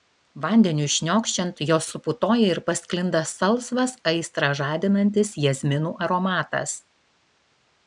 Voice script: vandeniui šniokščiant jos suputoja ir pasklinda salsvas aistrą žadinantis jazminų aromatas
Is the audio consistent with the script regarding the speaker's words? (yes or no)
yes